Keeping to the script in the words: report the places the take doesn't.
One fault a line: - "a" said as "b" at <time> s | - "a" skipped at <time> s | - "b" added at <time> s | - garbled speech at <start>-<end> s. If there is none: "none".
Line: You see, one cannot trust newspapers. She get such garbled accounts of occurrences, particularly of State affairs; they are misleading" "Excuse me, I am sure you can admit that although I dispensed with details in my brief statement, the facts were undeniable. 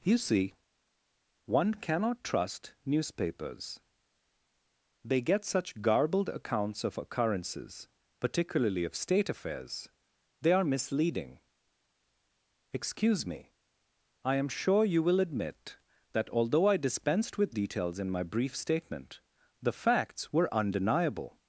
- "She" said as "They" at 5.0 s
- "can" said as "will" at 15.0 s